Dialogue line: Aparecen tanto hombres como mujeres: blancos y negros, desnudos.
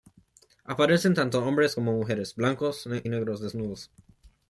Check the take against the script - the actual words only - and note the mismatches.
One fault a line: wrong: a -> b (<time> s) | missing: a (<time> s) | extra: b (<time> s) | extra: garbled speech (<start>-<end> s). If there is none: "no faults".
missing: y (2.9 s)